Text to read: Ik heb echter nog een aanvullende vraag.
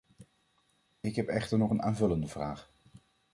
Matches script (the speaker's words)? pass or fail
pass